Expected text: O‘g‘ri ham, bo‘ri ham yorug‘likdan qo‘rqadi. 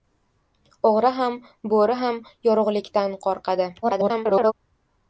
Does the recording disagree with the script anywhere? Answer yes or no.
yes